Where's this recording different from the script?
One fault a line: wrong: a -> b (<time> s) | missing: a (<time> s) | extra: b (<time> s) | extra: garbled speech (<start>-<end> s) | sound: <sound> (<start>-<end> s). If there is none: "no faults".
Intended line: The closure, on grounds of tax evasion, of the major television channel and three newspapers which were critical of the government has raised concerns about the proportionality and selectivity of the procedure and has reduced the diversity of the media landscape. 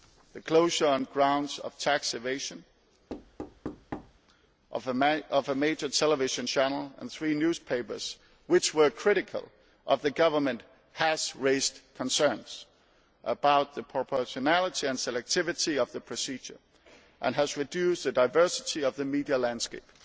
sound: thud (3.1-4.2 s)
wrong: the -> a (4.9 s)